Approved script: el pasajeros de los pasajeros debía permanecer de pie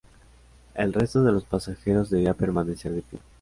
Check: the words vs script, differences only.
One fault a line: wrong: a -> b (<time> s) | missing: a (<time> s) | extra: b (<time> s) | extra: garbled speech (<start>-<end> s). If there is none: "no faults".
wrong: pasajeros -> resto (0.9 s)